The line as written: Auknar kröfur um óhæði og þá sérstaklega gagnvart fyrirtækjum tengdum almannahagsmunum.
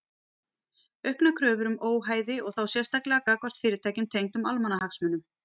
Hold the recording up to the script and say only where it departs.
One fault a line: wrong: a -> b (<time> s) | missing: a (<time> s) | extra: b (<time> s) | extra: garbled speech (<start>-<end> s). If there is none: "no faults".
no faults